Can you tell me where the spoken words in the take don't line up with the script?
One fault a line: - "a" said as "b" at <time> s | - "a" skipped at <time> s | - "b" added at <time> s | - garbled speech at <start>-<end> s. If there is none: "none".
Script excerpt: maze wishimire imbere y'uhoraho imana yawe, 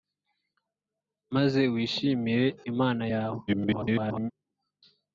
- "imbere y'uhoraho" skipped at 2.5 s
- garbled speech at 3.5-4.3 s